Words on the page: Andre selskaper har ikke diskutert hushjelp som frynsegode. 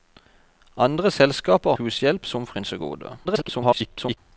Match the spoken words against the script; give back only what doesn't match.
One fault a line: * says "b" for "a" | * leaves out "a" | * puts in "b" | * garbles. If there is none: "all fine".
* leaves out "har ikke diskutert"
* garbles